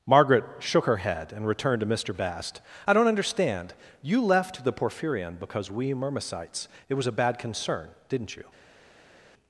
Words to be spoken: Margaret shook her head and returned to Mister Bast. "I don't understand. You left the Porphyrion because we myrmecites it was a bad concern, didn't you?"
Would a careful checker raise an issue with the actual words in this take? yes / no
no